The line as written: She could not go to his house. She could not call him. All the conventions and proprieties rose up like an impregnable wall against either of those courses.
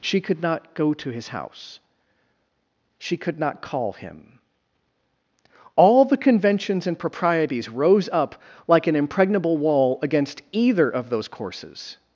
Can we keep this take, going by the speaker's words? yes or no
yes